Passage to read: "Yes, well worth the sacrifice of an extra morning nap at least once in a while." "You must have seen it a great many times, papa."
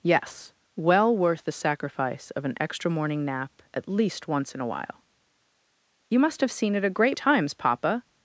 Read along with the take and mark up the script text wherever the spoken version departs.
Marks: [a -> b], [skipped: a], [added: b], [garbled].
"Yes, well worth the sacrifice of an extra morning nap at least once in a while." "You must have seen it a great [skipped: many] times, papa."